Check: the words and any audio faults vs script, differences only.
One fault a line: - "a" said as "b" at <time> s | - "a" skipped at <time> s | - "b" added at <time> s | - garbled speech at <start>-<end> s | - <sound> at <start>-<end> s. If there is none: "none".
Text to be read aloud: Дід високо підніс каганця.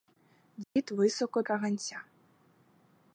- dropout at 0.6-0.8 s
- "підніс" skipped at 1.4 s